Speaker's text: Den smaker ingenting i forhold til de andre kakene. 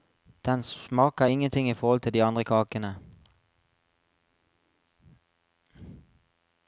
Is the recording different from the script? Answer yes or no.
no